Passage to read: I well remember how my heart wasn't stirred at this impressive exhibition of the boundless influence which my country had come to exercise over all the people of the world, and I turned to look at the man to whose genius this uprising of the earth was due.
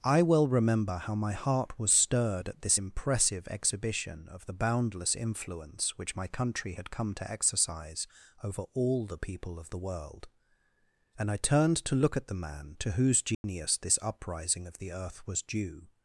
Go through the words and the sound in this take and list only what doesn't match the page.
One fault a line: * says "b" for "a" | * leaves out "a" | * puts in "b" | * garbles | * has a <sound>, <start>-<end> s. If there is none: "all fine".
* says "was" for "wasn't"
* has a dropout, 13.3-13.4 s